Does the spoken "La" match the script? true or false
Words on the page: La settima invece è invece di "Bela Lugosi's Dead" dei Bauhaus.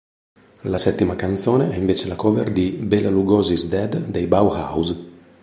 true